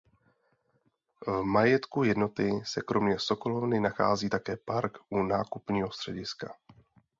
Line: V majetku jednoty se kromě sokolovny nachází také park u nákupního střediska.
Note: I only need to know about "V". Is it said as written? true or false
true